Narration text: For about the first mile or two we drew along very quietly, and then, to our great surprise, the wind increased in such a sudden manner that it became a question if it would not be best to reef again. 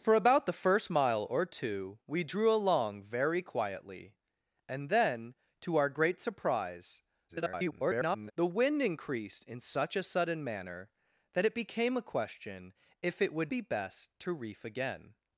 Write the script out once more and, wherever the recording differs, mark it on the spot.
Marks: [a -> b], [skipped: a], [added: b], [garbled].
For about the first mile or two we drew along very quietly, and then, to our great surprise, [garbled] the wind increased in such a sudden manner that it became a question if it would [skipped: not] be best to reef again.